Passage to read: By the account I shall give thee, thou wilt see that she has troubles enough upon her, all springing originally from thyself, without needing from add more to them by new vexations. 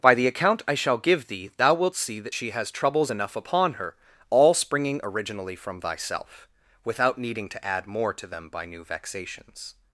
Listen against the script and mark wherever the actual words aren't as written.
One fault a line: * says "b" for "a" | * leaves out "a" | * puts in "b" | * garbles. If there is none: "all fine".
* says "to" for "from"